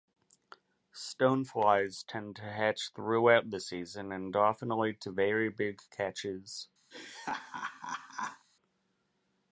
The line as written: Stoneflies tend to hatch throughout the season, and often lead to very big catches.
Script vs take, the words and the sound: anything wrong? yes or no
yes